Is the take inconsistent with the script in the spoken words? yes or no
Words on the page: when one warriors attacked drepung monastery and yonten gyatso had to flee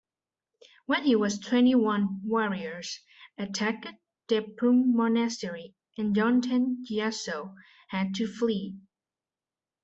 yes